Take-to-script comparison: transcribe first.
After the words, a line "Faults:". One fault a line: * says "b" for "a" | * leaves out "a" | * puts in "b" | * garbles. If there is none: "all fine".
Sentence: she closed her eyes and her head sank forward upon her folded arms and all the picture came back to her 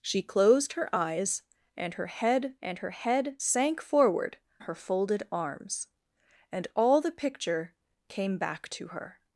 she closed her eyes and her head and her head sank forward her folded arms and all the picture came back to her
Faults:
* puts in "and her head"
* leaves out "upon"